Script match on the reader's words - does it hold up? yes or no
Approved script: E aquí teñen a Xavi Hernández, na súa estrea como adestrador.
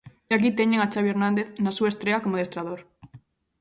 yes